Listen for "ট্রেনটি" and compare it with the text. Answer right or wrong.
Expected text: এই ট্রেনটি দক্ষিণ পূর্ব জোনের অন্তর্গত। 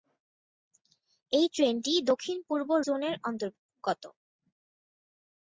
right